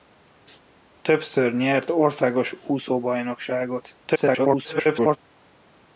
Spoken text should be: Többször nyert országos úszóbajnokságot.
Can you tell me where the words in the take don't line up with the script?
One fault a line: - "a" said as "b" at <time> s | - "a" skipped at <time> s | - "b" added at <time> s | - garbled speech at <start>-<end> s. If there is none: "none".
- garbled speech at 4.1-5.2 s